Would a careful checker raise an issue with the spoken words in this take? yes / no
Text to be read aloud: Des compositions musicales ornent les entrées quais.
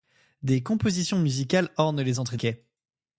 no